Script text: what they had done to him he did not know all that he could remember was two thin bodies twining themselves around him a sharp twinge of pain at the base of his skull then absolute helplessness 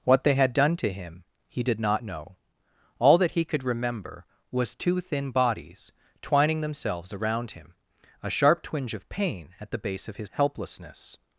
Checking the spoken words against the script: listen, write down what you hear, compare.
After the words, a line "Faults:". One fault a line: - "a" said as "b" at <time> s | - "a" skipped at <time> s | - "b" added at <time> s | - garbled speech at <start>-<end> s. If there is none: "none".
what they had done to him he did not know all that he could remember was two thin bodies twining themselves around him a sharp twinge of pain at the base of his helplessness
Faults:
- "skull then absolute" skipped at 10.3 s